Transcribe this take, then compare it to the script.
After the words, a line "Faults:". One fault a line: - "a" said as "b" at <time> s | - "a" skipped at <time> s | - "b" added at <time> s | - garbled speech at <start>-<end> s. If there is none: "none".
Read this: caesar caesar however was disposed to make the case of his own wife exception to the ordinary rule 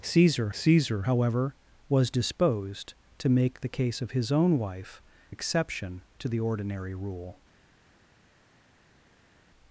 caesar caesar however was disposed to make the case of his own wife exception to the ordinary rule
Faults:
none